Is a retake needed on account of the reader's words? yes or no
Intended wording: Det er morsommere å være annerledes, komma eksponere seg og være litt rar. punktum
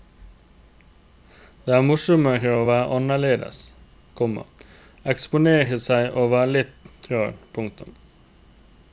no